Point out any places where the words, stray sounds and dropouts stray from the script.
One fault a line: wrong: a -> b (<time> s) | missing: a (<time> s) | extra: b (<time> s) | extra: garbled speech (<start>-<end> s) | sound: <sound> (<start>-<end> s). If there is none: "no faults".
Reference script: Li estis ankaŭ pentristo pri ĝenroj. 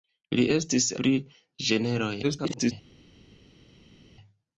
missing: ankaŭ pentristo (0.9 s)
extra: garbled speech (2.2-2.7 s)